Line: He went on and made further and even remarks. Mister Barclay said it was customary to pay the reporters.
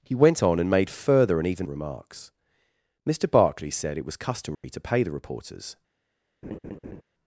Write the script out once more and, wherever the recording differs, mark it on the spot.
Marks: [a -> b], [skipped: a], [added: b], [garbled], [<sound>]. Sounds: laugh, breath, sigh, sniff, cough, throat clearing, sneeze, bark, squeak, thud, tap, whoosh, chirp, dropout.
He went on and made further and even remarks. Mister Barclay said it was customary [dropout] to pay the reporters. [laugh]